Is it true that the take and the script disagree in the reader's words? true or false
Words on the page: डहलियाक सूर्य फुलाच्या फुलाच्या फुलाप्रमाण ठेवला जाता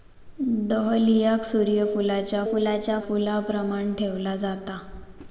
false